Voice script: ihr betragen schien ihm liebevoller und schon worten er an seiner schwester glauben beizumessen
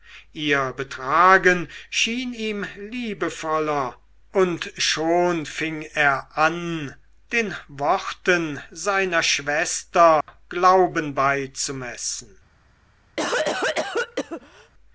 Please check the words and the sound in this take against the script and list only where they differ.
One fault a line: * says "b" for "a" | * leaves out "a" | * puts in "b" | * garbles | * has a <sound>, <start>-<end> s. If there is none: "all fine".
* says "fing" for "worten"
* puts in "den worten"
* has a dropout, 10.2-10.3 s
* has a cough, 13.2-14.7 s